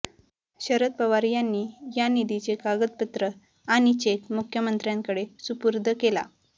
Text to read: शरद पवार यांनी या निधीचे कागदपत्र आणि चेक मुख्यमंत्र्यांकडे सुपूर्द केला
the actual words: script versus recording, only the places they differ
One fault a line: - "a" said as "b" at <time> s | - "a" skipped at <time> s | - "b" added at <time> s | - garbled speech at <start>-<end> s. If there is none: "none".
none